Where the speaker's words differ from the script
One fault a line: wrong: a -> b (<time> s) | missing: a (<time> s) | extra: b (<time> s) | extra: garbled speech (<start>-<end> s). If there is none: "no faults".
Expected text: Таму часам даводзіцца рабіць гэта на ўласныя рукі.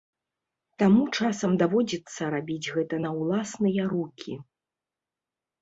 no faults